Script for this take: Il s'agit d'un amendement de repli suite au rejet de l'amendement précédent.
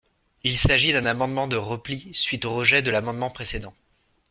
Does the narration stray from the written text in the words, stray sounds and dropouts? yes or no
no